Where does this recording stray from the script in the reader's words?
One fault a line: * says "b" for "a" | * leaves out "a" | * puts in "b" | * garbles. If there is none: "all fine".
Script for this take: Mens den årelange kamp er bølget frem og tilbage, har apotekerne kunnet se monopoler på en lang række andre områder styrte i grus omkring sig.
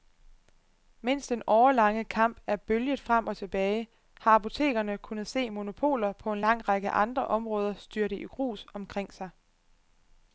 all fine